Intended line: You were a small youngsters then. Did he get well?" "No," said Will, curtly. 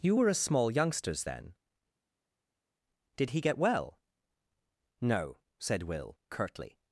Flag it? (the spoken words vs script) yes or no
no